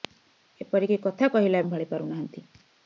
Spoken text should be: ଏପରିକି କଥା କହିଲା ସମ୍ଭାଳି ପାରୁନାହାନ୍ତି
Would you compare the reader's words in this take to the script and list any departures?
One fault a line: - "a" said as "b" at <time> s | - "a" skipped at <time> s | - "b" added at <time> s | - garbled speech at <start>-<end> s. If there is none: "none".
none